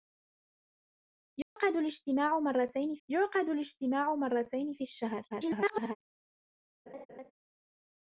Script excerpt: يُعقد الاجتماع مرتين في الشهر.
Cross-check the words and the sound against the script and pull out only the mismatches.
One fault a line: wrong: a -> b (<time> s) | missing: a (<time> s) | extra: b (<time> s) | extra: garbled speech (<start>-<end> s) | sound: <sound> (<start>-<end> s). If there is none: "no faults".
sound: dropout (1.4-1.6 s)
extra: يُعقد الاجتماع مرتين (3.1 s)
extra: garbled speech (5.3-6.0 s)
sound: laugh (6.9-7.3 s)